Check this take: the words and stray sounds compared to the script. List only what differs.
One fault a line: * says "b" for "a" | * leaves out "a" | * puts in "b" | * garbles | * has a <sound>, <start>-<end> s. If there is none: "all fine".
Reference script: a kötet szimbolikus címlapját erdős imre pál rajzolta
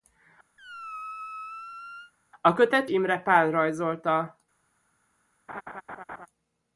* has a squeak, 0.6-2.1 s
* leaves out "szimbolikus címlapját erdős"
* has a laugh, 5.5-6.3 s